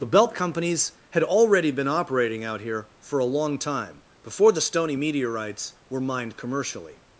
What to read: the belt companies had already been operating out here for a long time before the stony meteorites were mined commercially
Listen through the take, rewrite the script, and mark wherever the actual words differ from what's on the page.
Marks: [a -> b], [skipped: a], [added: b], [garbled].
the belt companies had already been operating out here for a long time before the stony meteorites were mined commercially